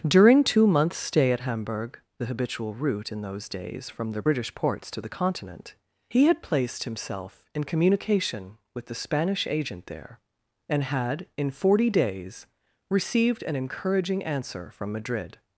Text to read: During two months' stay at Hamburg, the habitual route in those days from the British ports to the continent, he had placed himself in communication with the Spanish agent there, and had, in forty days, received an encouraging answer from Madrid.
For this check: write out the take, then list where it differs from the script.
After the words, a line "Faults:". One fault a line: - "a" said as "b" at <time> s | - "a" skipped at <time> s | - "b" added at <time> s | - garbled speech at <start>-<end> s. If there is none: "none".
During two months' stay at Hamburg, the habitual route in those days from the British ports to the continent, he had placed himself in communication with the Spanish agent there, and had, in forty days, received an encouraging answer from Madrid.
Faults:
none